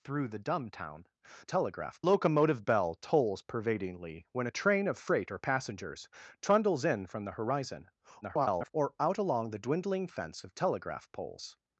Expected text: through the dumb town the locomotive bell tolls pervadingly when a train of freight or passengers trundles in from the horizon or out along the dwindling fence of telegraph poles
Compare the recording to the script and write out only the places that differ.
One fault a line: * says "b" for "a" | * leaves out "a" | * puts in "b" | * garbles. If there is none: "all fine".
* says "telegraph" for "the"
* garbles